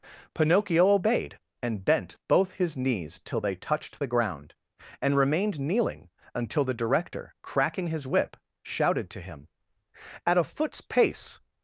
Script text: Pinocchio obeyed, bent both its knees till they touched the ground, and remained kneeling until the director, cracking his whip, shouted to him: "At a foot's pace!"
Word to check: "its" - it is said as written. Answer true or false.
false